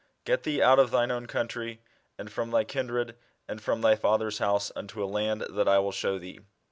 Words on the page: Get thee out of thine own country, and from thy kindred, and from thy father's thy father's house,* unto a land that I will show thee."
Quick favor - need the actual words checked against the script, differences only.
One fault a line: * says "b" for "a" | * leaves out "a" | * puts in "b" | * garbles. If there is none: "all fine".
* leaves out "thy father's"